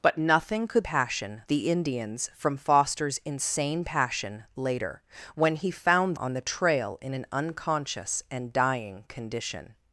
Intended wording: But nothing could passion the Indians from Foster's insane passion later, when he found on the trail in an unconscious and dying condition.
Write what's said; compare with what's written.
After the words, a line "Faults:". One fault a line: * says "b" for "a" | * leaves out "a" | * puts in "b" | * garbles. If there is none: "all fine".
But nothing could passion the Indians from Foster's insane passion later, when he found on the trail in an unconscious and dying condition.
Faults:
all fine